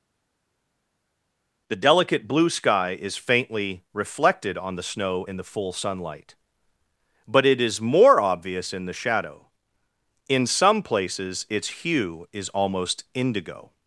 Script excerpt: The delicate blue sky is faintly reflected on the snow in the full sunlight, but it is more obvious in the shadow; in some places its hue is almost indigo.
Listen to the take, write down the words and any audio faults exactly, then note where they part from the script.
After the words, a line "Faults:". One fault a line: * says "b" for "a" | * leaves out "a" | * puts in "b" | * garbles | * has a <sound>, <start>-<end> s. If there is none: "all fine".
The delicate blue sky is faintly reflected on the snow in the full sunlight, but it is more obvious in the shadow; in some places its hue is almost indigo.
Faults:
all fine